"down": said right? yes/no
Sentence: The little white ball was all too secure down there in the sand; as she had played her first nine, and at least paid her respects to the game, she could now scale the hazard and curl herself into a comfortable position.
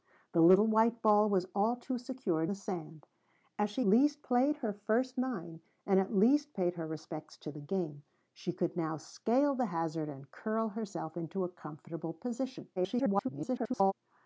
no